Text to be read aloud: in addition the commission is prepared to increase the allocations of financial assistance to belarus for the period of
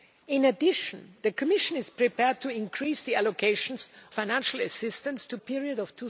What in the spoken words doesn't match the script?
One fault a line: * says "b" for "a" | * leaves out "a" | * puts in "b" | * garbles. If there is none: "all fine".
* leaves out "of"
* leaves out "belarus for the"